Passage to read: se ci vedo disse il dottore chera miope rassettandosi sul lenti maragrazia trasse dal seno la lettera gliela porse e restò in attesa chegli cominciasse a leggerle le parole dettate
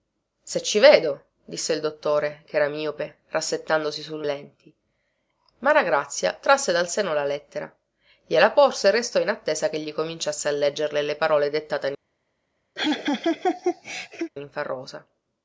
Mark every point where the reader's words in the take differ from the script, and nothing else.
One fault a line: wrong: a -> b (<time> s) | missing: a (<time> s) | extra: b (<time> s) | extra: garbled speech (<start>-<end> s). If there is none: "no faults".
no faults